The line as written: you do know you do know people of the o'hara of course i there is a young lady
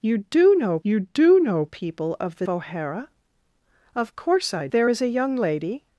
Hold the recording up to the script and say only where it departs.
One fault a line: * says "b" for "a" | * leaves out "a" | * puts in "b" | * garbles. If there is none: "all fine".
all fine